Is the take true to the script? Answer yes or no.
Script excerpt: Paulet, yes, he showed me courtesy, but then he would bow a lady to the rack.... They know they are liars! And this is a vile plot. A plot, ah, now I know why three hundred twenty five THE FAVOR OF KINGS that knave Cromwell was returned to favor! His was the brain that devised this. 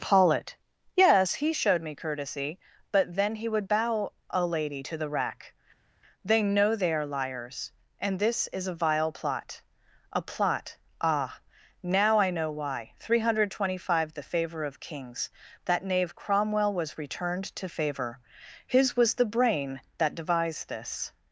yes